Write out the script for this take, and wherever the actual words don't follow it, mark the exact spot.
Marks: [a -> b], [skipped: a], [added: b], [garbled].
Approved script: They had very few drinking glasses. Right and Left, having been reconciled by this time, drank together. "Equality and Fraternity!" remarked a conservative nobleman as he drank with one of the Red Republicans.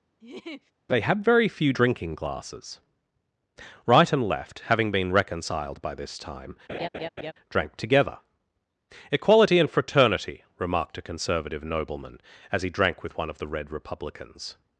They had very few drinking glasses. Right and Left, having been reconciled by this time, drank together. "Equality and Fraternity!" remarked a conservative nobleman as he drank with one of the Red Republicans.